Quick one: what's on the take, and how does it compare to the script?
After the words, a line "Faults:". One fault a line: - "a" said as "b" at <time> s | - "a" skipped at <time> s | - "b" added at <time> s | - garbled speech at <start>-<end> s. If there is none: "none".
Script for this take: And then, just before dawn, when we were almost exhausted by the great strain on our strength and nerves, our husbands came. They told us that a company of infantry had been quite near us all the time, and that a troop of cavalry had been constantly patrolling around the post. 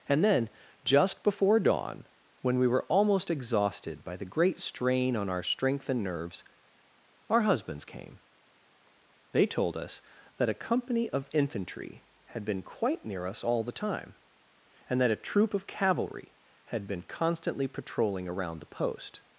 And then, just before dawn, when we were almost exhausted by the great strain on our strength and nerves, our husbands came. They told us that a company of infantry had been quite near us all the time, and that a troop of cavalry had been constantly patrolling around the post.
Faults:
none